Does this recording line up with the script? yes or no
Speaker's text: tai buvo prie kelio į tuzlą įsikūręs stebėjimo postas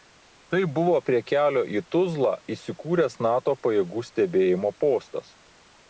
no